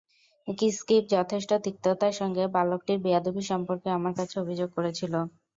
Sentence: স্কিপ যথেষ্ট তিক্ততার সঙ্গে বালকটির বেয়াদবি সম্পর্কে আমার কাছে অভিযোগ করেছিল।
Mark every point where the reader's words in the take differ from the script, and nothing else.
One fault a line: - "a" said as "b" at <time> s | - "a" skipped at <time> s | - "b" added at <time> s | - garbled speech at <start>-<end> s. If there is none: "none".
none